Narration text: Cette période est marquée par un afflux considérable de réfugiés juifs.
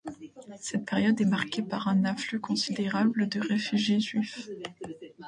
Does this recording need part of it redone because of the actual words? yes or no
no